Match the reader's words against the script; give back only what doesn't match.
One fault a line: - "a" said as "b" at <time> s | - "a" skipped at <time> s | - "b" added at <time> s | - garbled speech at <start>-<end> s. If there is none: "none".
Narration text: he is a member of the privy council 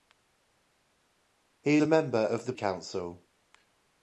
- "is" skipped at 1.8 s
- "privy" skipped at 2.5 s